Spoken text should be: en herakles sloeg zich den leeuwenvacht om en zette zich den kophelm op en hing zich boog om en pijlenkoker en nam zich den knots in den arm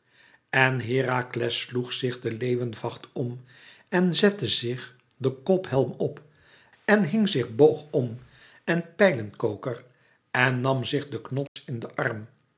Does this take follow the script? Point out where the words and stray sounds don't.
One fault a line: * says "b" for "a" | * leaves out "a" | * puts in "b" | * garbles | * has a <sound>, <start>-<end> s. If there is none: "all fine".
* has a dropout, 11.5-11.6 s